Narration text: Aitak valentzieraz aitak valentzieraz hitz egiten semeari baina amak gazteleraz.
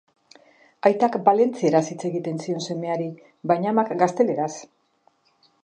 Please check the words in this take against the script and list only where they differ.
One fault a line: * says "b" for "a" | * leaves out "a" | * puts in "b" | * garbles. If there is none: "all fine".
* leaves out "aitak valentzieraz"
* puts in "zion"